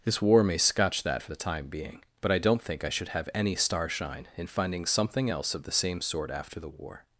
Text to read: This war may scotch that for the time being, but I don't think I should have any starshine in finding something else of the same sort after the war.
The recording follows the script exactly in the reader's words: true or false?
true